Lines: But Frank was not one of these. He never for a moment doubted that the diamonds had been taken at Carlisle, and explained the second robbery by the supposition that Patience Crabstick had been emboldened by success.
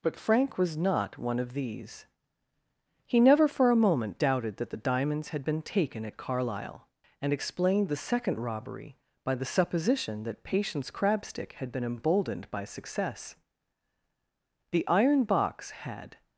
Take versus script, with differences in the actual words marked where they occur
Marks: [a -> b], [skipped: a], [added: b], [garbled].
But Frank was not one of these. He never for a moment doubted that the diamonds had been taken at Carlisle, and explained the second robbery by the supposition that Patience Crabstick had been emboldened by success. [added: The iron box had]